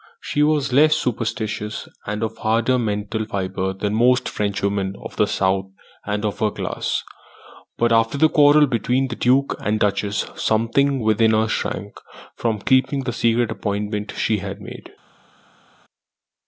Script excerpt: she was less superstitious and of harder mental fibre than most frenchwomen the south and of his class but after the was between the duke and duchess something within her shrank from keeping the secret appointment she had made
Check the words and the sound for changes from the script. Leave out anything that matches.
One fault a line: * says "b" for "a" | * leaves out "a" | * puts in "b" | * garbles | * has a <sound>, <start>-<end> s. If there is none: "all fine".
* puts in "of"
* says "her" for "his"
* says "quarrel" for "was"